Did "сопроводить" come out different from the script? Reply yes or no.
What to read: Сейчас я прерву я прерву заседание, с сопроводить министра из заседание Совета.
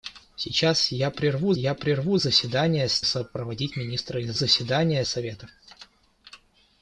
no